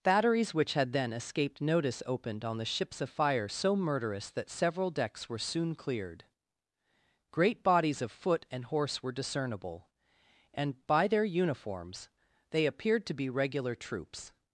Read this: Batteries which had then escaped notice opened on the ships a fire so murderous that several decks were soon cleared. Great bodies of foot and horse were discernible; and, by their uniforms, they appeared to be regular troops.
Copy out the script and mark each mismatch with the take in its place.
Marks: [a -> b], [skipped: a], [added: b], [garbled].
Batteries which had then escaped notice opened on the ships a fire so murderous that several decks were soon cleared. Great bodies of foot and horse were discernible; and, by their uniforms, they appeared to be regular troops.